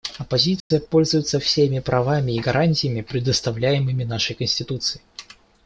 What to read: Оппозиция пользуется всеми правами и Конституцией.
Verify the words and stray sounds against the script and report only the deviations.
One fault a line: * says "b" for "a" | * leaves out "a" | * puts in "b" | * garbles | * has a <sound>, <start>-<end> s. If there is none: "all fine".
* has a dropout, 0.6-0.7 s
* puts in "гарантиями предоставляемыми нашей"